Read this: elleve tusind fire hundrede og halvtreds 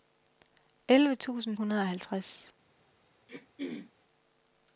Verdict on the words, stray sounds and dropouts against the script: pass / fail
fail